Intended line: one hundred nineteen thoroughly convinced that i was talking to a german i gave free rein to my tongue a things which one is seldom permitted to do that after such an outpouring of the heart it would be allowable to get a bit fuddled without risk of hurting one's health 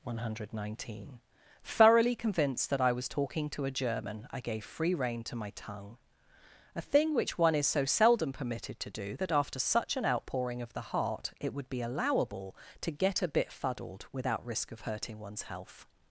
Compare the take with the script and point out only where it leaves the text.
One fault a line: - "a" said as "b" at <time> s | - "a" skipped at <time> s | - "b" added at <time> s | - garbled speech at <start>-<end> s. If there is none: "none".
- "things" said as "thing" at 6.8 s
- "so" added at 7.7 s